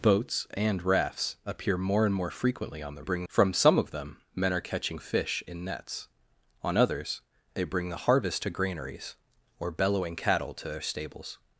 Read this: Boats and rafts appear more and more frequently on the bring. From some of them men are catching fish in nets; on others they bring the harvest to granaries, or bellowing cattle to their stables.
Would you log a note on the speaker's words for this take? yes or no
no